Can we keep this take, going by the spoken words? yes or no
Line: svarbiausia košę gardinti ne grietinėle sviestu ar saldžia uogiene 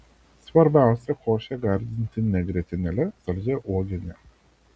no